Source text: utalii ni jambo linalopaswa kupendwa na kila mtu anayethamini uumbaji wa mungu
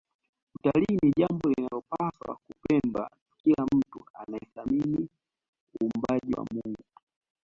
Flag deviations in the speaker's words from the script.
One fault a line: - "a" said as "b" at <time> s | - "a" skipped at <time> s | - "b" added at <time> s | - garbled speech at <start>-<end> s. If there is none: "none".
- "na" skipped at 3.1 s